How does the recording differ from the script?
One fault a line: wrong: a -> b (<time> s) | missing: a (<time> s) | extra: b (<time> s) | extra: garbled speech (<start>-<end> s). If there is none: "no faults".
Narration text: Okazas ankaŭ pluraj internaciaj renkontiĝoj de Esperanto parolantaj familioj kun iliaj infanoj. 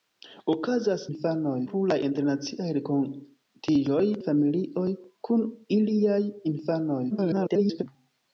wrong: ankaŭ -> infanoj (1.1 s)
missing: de Esperanto parolantaj (4.0 s)
extra: garbled speech (7.1-7.8 s)